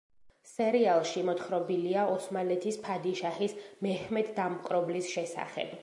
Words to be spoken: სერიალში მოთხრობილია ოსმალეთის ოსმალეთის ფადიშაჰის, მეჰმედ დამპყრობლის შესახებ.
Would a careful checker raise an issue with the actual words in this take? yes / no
yes